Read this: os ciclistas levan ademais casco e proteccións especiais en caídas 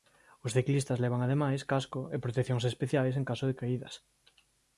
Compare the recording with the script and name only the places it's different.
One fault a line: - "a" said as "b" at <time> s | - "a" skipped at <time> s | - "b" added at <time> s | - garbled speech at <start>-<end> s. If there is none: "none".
- "caso de" added at 3.3 s